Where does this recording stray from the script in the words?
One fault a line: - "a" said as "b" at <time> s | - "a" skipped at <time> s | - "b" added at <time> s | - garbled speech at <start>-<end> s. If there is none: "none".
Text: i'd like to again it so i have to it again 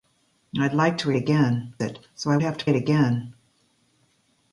none